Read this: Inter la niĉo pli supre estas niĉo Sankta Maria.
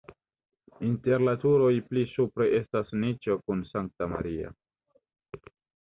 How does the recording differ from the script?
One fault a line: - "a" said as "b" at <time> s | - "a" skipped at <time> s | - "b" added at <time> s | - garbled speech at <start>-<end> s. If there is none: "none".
- "niĉo" said as "turoj" at 1.4 s
- "kun" added at 3.5 s